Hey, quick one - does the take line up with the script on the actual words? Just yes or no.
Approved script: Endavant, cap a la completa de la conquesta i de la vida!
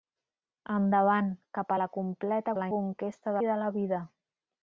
yes